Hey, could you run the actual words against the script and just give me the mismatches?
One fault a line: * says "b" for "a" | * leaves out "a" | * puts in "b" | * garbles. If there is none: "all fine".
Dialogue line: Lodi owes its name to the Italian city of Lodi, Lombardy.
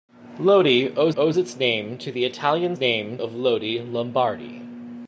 * puts in "owes"
* says "name" for "city"